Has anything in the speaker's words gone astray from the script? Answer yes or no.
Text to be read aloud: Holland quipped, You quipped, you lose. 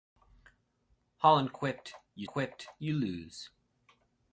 no